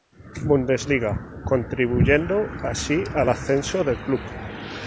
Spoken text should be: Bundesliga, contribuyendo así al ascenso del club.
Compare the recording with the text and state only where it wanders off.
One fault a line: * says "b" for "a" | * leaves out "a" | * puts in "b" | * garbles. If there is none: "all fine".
all fine